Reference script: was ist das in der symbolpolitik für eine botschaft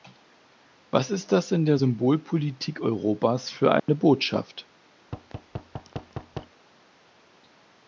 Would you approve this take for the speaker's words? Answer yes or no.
no